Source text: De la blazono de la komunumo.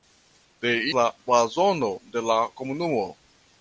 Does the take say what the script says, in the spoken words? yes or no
yes